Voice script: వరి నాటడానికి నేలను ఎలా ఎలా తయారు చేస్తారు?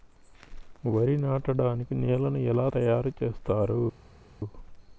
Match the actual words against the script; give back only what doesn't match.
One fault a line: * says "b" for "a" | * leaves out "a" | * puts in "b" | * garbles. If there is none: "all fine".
* leaves out "ఎలా"